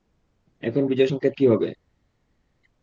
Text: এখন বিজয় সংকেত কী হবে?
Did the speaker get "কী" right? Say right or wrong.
right